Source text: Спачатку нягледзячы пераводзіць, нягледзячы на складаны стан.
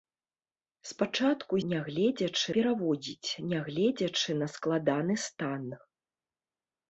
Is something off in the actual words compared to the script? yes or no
no